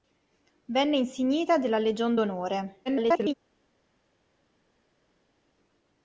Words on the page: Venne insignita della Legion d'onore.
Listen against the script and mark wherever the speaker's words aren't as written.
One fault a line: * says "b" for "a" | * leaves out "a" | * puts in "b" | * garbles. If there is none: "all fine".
* garbles